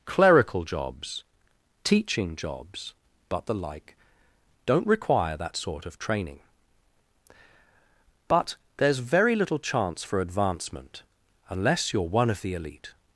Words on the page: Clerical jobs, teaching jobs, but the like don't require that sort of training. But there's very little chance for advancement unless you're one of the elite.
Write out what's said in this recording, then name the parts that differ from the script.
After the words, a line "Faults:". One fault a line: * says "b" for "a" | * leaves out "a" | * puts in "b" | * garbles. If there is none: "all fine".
Clerical jobs, teaching jobs, but the like don't require that sort of training. But there's very little chance for advancement unless you're one of the elite.
Faults:
all fine